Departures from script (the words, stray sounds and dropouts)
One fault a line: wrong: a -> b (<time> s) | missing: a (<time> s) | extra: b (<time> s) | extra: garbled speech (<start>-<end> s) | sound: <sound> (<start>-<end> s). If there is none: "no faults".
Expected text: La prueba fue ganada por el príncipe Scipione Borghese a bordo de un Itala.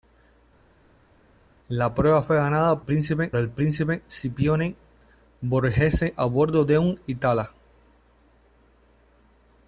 wrong: por -> príncipe (2.8 s)